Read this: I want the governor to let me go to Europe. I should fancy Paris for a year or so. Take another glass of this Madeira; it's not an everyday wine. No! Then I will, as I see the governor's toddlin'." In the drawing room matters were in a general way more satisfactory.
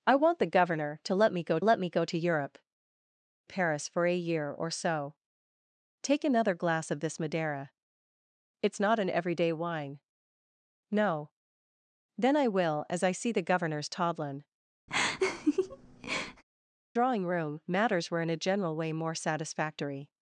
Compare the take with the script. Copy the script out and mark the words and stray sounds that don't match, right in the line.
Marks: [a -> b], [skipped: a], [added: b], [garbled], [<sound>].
I want the governor to let me go [to Europe. I should fancy -> let me go to Europe] Paris for a year or so. Take another glass of this Madeira; it's not an everyday wine. No! Then I will, as I see the governor's toddlin'." [skipped: In the] [laugh] drawing room matters were in a general way more satisfactory.